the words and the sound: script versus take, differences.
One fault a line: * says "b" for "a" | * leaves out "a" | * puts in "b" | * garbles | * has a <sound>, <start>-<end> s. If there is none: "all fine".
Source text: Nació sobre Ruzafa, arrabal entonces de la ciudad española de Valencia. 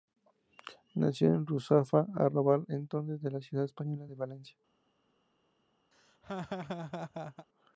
* says "en" for "sobre"
* has a laugh, 5.9-7.5 s